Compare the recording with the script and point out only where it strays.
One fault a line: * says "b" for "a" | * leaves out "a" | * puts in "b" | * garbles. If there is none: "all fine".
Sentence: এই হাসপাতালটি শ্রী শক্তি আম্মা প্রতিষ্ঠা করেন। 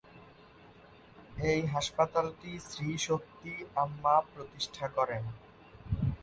all fine